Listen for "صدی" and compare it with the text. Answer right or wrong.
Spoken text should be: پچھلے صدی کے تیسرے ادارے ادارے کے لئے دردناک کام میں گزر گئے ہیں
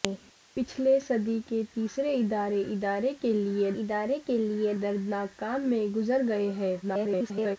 right